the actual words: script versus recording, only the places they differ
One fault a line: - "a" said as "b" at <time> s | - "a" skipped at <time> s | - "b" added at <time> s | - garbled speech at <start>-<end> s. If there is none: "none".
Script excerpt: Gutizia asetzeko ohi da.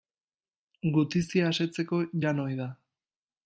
- "jan" added at 2.2 s